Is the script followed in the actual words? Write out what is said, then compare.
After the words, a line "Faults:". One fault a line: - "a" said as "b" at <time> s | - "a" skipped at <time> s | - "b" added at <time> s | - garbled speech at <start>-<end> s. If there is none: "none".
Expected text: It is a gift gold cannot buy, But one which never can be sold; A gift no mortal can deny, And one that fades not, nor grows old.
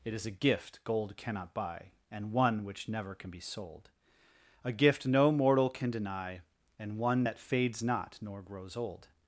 It is a gift gold cannot buy, And one which never can be sold; A gift no mortal can deny, And one that fades not, nor grows old.
Faults:
- "But" said as "And" at 2.1 s